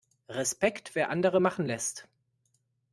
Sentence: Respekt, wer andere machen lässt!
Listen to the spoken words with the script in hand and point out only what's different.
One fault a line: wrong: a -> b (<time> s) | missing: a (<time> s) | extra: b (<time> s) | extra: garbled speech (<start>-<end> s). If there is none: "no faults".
no faults